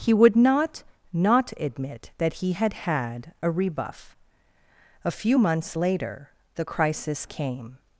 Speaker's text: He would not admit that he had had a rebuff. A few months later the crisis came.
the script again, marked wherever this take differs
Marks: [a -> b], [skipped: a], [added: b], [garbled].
He would not [added: not] admit that he had had a rebuff. A few months later the crisis came.